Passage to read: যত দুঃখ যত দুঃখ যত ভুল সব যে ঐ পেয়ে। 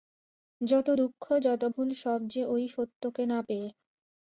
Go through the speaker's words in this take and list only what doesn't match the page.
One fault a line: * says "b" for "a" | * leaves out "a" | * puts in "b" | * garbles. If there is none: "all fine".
* leaves out "দুঃখ যত"
* puts in "সত্যকে না"